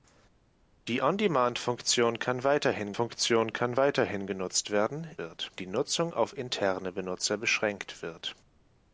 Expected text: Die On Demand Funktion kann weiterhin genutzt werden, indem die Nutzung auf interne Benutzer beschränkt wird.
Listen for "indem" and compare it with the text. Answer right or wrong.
wrong